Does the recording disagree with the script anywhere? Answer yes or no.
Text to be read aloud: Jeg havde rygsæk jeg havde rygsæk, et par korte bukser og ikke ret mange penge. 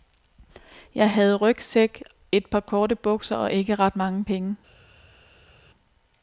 yes